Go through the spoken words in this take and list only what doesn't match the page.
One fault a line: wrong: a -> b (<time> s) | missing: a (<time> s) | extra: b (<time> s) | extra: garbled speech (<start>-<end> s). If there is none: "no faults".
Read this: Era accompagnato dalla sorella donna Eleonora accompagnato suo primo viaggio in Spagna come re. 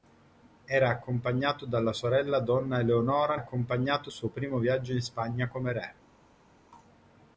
no faults